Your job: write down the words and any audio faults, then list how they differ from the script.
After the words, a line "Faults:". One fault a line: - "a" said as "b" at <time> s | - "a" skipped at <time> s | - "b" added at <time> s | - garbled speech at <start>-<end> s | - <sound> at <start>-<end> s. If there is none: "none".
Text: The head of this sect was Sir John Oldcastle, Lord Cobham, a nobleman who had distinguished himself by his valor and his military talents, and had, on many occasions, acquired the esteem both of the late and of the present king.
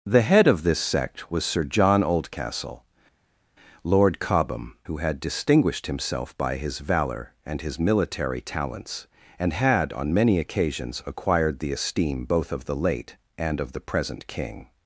The head of this sect was Sir John Oldcastle, Lord Cobham, who had distinguished himself by his valor and his military talents, and had, on many occasions, acquired the esteem both of the late and of the present king.
Faults:
- "a nobleman" skipped at 4.8 s